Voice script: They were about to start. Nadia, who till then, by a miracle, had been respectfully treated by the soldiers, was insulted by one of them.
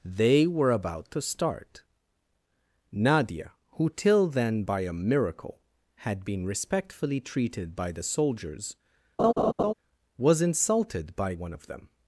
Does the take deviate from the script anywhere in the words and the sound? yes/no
yes